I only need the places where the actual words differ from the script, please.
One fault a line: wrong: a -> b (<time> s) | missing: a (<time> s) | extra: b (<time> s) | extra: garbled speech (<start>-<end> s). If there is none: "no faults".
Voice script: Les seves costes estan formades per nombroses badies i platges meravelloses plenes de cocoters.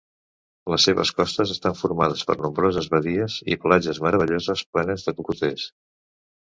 no faults